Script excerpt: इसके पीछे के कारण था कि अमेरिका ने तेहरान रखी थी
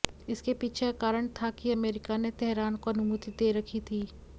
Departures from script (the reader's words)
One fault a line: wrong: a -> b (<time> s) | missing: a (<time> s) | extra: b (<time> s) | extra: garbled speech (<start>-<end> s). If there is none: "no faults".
wrong: के -> का (0.8 s)
extra: को अनुमति दे (2.8 s)